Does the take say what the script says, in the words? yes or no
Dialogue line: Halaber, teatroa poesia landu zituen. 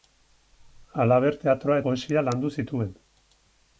yes